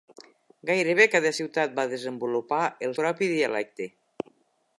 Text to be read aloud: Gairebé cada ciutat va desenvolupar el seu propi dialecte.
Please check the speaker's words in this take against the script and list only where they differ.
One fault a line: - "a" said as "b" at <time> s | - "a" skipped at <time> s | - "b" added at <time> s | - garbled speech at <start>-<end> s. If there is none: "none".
- "seu" skipped at 3.0 s